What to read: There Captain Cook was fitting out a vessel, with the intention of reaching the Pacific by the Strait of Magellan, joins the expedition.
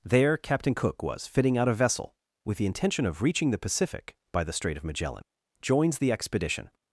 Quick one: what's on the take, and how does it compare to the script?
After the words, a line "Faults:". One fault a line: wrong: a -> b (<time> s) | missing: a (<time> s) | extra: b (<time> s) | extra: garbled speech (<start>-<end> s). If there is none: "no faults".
There Captain Cook was fitting out a vessel, with the intention of reaching the Pacific by the Strait of Magellan, joins the expedition.
Faults:
no faults